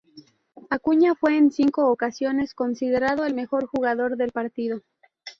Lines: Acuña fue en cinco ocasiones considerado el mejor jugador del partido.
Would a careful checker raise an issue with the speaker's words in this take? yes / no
no